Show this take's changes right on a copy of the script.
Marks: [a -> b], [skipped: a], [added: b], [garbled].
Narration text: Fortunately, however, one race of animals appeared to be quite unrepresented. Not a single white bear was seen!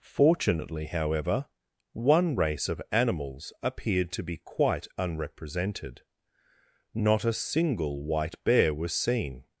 Fortunately, however, one race of animals appeared to be quite unrepresented. Not a single white bear was seen!